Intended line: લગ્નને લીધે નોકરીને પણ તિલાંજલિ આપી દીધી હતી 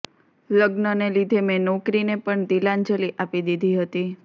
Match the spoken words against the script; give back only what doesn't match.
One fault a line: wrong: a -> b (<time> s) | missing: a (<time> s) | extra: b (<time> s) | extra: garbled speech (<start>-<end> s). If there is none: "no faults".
extra: મેં (1.4 s)